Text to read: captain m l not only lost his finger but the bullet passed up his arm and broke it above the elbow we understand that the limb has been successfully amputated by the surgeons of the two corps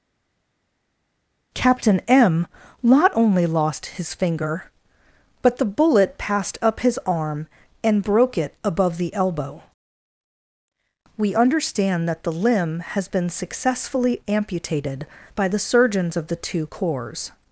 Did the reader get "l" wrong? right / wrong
wrong